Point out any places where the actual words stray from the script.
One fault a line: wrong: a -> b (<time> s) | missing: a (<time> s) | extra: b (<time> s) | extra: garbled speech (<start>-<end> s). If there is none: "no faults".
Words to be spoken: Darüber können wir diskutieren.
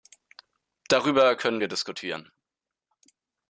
no faults